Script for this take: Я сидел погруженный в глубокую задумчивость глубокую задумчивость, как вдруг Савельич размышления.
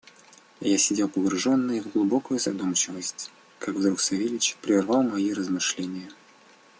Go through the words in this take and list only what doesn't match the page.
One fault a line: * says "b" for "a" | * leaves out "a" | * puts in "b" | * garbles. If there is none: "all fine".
* leaves out "глубокую задумчивость"
* puts in "прервал мои"